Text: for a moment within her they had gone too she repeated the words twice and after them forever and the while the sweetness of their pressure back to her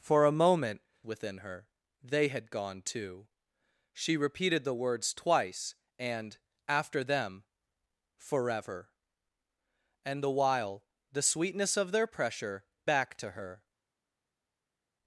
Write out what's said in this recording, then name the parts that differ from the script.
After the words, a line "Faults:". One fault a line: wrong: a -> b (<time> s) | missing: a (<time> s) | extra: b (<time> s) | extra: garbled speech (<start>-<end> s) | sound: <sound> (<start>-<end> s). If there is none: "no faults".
for a moment within her they had gone too she repeated the words twice and after them forever and the while the sweetness of their pressure back to her
Faults:
no faults